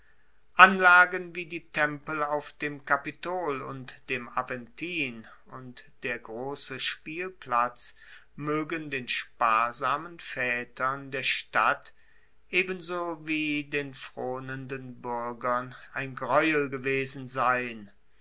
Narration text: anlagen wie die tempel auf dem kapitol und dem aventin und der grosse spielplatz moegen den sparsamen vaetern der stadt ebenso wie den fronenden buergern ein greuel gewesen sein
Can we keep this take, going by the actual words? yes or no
yes